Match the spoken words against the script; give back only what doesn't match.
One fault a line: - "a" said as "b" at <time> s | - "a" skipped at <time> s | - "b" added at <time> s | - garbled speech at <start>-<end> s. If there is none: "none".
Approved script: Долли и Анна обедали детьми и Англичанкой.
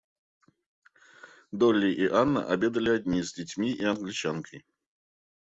- "одни с" added at 2.9 s